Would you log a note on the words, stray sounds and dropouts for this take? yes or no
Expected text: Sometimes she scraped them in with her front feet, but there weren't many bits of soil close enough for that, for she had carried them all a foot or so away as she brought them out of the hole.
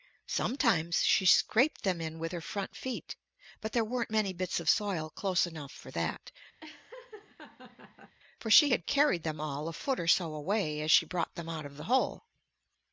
yes